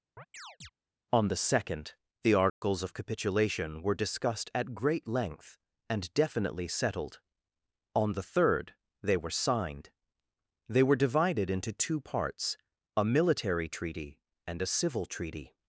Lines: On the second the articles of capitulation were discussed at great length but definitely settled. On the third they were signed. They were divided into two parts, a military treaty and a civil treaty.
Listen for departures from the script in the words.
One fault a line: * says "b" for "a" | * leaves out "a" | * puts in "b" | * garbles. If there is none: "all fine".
* says "and" for "but"